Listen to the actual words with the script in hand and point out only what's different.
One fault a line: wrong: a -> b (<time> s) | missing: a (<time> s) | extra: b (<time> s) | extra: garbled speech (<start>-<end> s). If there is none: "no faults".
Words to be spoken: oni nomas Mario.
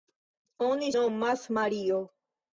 no faults